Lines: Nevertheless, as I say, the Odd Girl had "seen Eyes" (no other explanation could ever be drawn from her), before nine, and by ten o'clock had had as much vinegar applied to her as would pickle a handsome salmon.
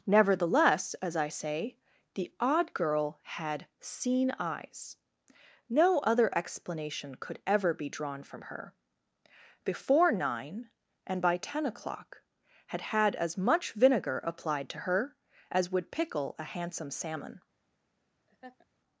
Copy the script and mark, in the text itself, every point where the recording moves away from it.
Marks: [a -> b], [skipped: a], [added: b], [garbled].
Nevertheless, as I say, the Odd Girl had "seen Eyes" (no other explanation could ever be drawn from her), before nine, and by ten o'clock had had as much vinegar applied to her as would pickle a handsome salmon.